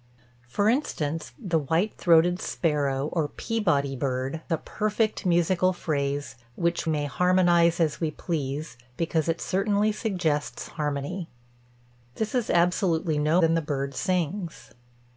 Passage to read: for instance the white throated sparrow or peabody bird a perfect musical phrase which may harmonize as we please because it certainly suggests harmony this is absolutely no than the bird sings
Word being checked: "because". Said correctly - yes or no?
yes